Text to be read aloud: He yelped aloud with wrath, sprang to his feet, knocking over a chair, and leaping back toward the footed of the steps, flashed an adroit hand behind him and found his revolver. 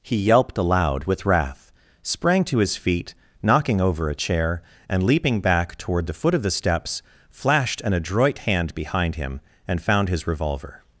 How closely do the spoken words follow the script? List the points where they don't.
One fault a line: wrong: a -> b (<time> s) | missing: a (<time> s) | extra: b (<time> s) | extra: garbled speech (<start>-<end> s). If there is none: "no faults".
wrong: footed -> foot (6.1 s)